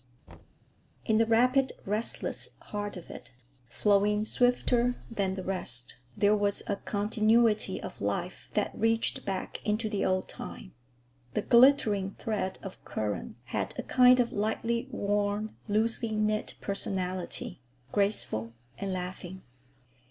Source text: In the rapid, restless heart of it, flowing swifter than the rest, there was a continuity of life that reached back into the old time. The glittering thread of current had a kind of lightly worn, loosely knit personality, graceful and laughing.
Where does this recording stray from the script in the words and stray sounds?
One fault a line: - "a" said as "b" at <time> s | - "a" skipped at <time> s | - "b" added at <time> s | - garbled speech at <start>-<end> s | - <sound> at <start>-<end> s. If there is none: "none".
- thud at 0.3-0.6 s